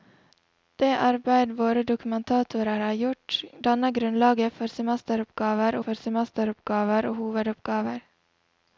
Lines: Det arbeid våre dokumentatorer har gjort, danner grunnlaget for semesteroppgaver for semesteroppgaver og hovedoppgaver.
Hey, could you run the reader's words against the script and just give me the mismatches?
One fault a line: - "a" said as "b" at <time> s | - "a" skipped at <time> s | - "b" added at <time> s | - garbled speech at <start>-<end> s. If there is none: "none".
none